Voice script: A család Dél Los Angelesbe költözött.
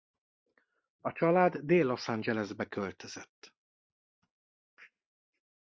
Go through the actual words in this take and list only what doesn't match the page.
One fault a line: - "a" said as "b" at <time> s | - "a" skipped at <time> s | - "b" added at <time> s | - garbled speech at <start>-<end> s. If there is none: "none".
none